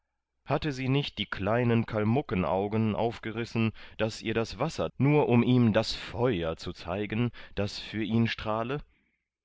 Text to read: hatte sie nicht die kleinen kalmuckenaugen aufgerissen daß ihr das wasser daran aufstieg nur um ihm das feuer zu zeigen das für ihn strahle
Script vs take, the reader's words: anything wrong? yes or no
yes